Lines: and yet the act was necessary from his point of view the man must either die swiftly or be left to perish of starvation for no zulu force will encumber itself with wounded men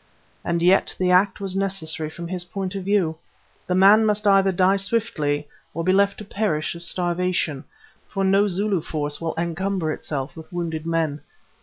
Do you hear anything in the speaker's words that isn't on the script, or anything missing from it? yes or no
no